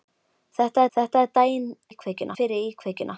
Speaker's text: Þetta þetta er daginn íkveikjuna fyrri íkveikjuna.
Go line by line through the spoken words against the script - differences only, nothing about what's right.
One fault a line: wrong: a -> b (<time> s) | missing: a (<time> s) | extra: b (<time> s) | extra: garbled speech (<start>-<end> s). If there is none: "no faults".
no faults